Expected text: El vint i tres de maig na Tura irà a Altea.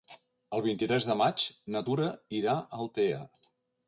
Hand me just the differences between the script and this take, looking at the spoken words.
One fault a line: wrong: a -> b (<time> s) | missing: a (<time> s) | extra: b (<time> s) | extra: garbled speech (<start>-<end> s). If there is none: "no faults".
no faults